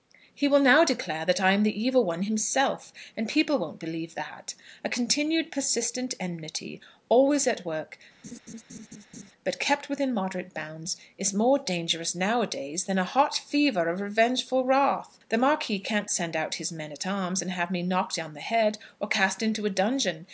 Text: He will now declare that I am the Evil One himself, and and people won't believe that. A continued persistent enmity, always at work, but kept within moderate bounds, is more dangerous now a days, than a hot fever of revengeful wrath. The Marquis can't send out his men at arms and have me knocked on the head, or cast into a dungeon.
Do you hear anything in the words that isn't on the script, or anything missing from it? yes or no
yes